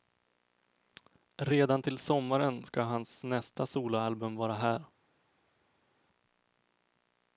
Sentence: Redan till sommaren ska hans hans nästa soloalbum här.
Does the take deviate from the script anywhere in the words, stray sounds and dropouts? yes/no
yes